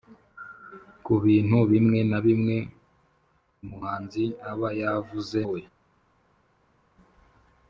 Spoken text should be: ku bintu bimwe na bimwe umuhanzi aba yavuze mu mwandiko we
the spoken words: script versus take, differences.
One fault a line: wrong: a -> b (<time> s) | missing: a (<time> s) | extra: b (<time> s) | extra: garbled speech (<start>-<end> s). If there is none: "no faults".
missing: mu mwandiko (5.4 s)